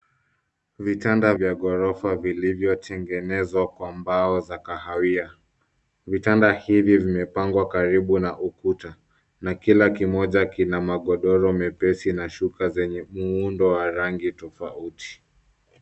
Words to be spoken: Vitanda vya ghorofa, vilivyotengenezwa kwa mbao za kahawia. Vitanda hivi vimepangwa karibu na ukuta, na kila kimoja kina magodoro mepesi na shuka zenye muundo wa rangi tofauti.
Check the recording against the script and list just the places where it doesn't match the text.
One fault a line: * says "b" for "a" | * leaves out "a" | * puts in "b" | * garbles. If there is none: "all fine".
all fine